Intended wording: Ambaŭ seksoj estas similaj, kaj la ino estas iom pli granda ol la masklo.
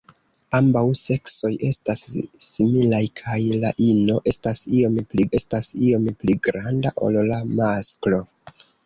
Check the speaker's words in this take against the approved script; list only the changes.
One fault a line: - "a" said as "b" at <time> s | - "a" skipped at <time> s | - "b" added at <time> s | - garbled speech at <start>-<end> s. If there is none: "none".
- "estas iom pli" added at 5.4 s